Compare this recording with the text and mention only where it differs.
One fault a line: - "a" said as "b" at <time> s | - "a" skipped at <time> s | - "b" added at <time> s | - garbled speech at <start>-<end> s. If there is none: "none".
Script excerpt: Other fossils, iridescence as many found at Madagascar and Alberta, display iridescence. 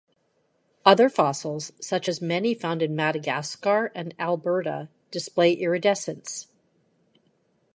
- "iridescence" said as "such" at 1.8 s
- "at" said as "in" at 2.8 s